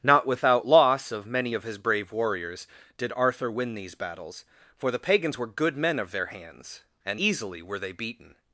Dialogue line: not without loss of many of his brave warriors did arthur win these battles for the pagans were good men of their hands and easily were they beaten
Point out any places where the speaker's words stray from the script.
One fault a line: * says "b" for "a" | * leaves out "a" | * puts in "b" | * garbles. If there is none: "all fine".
all fine